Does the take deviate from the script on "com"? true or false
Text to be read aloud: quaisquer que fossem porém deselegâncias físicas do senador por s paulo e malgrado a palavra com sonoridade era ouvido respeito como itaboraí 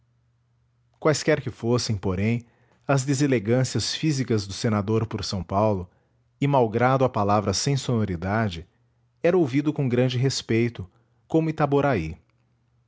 true